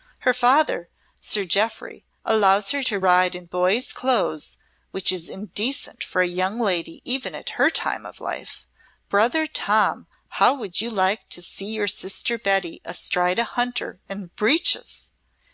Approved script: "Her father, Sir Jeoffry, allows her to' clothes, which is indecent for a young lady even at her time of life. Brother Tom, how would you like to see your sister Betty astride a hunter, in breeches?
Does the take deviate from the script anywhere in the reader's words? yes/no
yes